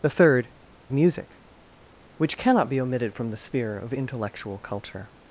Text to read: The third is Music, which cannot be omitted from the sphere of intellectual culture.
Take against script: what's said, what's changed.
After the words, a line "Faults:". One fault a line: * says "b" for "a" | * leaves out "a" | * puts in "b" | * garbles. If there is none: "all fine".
The third Music, which cannot be omitted from the sphere of intellectual culture.
Faults:
* leaves out "is"